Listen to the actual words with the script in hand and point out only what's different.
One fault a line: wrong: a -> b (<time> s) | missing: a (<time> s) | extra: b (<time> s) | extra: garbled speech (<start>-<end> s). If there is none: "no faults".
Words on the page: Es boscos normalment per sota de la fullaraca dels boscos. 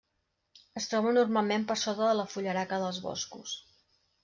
wrong: boscos -> troba (0.9 s)